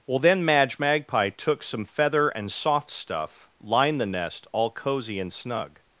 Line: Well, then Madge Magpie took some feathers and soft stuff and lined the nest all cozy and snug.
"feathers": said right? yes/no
no